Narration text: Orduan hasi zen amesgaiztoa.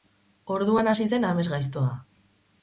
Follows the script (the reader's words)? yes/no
yes